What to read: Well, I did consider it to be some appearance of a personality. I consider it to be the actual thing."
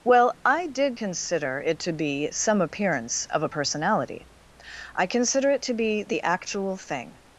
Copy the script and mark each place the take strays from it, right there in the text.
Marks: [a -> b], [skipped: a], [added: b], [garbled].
Well, I did consider it to be some appearance of a personality. I consider it to be the actual thing."